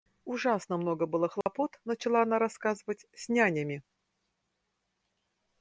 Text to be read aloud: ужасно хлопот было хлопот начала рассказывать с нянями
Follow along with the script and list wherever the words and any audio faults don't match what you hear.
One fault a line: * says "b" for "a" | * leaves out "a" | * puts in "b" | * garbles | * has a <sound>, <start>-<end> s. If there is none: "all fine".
* says "много" for "хлопот"
* has a dropout, 1.4-1.5 s
* puts in "она"